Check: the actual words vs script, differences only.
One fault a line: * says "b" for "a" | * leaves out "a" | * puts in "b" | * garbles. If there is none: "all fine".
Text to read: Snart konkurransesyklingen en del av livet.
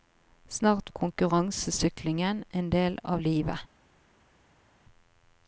all fine